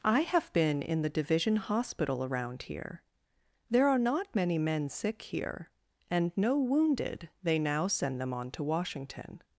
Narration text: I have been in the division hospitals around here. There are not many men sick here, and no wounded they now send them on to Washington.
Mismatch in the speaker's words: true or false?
true